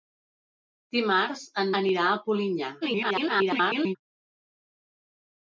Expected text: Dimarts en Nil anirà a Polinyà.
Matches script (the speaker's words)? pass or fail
fail